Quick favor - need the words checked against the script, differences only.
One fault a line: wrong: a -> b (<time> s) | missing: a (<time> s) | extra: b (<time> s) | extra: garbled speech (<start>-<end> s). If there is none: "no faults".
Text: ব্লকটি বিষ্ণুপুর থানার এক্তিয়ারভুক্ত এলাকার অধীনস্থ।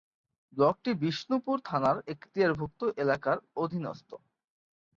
no faults